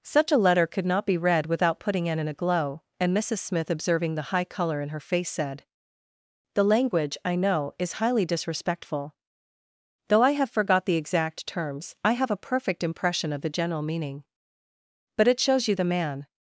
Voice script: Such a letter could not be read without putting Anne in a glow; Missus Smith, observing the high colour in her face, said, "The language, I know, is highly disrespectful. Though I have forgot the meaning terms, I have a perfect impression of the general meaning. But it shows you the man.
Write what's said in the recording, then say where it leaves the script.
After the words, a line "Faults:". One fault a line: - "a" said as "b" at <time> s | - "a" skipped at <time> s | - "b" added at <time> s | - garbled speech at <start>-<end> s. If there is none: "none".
Such a letter could not be read without putting Anne in a glow; and Missus Smith, observing the high colour in her face, said, "The language, I know, is highly disrespectful. Though I have forgot the exact terms, I have a perfect impression of the general meaning. But it shows you the man.
Faults:
- "and" added at 3.0 s
- "meaning" said as "exact" at 10.9 s